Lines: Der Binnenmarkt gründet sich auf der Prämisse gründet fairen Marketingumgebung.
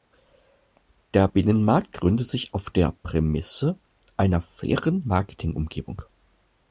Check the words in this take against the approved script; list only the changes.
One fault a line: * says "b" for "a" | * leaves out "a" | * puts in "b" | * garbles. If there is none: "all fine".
* says "einer" for "gründet"